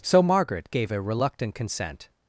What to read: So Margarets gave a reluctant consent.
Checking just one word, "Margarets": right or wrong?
wrong